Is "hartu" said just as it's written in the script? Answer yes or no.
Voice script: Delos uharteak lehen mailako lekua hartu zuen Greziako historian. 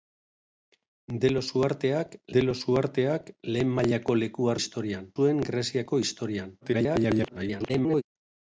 no